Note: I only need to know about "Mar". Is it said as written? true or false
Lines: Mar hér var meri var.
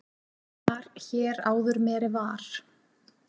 true